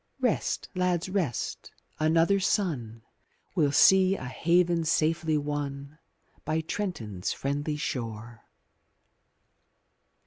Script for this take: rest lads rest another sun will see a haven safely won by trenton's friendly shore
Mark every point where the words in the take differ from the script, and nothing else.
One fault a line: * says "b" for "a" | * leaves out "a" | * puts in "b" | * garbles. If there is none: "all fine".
all fine